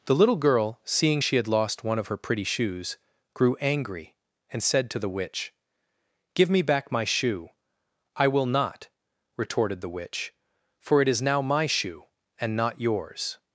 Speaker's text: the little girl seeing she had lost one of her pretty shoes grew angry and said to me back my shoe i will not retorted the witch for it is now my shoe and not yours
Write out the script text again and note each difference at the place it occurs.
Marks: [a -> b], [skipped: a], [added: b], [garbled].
the little girl seeing she had lost one of her pretty shoes grew angry and said to [added: the witch give] me back my shoe i will not retorted the witch for it is now my shoe and not yours